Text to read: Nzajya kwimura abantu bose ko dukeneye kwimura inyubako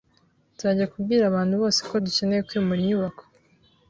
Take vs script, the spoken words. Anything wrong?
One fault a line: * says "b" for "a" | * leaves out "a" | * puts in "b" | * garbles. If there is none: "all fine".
* says "kubwira" for "kwimura"